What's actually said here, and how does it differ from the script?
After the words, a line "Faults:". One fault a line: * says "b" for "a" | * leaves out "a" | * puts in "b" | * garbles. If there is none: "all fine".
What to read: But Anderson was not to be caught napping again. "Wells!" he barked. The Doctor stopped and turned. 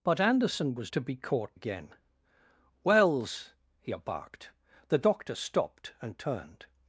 But Anderson was to be caught again. "Wells!" he barked. The Doctor stopped and turned.
Faults:
* leaves out "not"
* leaves out "napping"